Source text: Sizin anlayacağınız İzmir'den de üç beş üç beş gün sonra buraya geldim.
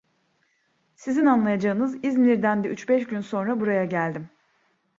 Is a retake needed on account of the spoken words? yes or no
yes